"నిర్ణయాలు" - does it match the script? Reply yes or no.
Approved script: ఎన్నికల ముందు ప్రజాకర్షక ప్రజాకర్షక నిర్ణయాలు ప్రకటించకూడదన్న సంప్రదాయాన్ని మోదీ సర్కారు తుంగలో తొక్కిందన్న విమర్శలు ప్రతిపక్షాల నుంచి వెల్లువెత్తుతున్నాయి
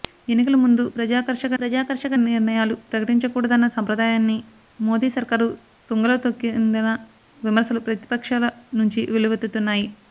yes